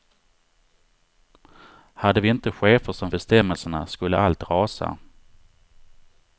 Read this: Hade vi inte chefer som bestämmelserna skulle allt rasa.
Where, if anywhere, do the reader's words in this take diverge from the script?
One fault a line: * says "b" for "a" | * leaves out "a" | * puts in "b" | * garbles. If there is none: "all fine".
all fine